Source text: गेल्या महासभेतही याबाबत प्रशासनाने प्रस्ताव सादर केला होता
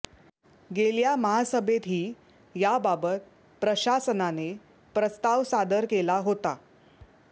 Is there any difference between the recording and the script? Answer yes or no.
no